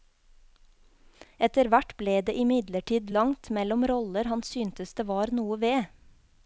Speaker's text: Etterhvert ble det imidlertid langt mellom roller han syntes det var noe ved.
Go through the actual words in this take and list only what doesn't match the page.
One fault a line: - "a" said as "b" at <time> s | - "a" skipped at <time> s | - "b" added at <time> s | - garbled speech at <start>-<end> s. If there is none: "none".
none